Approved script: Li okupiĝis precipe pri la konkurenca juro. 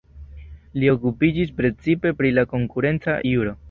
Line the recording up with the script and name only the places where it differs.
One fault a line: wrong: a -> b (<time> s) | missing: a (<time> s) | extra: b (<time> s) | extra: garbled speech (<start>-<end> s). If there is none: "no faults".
no faults